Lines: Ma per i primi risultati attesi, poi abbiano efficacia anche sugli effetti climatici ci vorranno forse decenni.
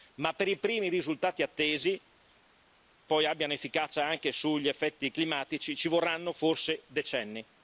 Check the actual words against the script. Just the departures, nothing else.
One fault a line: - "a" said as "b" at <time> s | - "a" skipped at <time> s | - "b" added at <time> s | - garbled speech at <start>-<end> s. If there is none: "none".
none